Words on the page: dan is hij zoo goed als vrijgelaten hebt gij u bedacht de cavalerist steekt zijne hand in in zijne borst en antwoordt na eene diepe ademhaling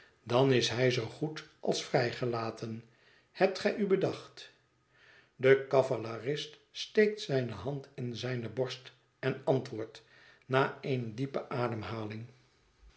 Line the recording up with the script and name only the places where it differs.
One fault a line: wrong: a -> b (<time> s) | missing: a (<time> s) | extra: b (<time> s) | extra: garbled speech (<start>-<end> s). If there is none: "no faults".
missing: in (8.2 s)